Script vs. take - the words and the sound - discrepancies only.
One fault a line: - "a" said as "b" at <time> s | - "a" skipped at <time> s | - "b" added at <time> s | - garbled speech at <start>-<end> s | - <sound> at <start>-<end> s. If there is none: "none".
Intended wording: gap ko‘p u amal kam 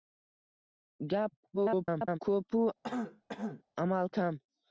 - garbled speech at 1.5-2.2 s
- throat clearing at 2.8-3.6 s